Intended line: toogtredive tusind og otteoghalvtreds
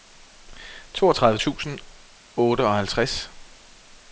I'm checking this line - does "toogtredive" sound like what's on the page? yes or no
yes